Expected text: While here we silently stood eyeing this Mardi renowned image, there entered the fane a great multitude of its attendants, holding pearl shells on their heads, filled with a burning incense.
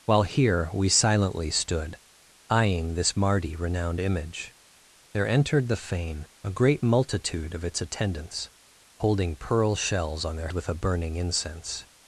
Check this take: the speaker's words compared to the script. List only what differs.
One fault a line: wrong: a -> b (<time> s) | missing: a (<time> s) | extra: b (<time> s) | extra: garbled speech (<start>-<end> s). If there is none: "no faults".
missing: heads filled (10.5 s)